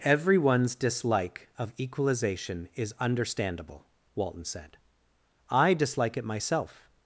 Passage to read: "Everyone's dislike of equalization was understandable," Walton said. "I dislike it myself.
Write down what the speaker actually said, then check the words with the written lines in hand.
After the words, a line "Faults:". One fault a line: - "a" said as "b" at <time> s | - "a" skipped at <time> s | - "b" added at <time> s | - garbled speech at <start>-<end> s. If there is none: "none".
"Everyone's dislike of equalization is understandable," Walton said. "I dislike it myself.
Faults:
- "was" said as "is" at 2.8 s